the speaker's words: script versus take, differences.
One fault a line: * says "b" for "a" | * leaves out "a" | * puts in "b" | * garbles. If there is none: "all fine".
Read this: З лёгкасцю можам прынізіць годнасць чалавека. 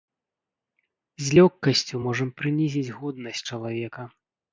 all fine